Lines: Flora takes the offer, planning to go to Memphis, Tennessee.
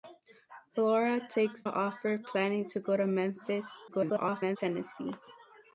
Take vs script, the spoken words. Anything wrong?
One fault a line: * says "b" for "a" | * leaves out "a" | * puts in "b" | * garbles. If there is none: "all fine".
* leaves out "the"
* garbles